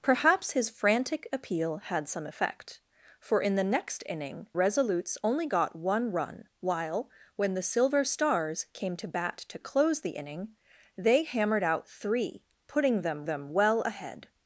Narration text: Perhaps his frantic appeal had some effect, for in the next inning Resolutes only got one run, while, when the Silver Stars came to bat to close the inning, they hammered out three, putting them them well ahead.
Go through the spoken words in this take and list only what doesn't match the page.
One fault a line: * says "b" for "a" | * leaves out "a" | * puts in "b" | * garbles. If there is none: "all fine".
all fine